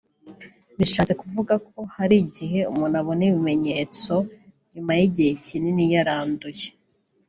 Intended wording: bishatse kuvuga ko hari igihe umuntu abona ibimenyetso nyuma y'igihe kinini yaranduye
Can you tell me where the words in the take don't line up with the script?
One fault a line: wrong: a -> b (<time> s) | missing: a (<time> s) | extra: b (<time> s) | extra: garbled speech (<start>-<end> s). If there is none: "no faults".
no faults